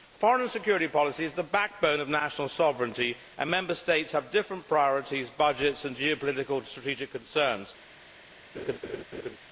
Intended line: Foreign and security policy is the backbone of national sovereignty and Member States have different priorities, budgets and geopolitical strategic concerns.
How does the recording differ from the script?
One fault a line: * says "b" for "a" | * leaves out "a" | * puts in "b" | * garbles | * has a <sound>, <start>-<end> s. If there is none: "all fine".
* has a laugh, 8.5-9.4 s